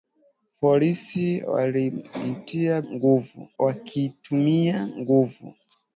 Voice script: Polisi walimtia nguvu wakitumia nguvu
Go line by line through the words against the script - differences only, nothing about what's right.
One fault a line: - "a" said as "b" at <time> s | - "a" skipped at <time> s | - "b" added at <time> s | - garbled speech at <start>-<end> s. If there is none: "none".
none